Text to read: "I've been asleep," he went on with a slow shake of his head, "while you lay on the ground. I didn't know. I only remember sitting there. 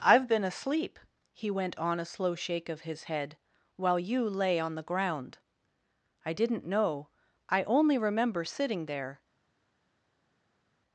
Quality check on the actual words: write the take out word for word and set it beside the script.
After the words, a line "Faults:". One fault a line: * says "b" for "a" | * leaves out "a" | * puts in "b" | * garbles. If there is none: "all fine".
"I've been asleep," he went on a slow shake of his head, "while you lay on the ground. I didn't know. I only remember sitting there.
Faults:
* leaves out "with"